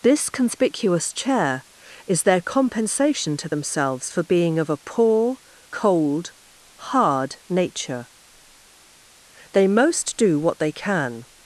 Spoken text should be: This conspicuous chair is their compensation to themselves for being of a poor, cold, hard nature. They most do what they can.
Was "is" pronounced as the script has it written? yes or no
yes